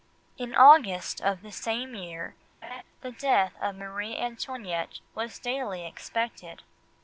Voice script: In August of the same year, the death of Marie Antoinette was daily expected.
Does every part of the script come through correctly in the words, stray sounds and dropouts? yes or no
no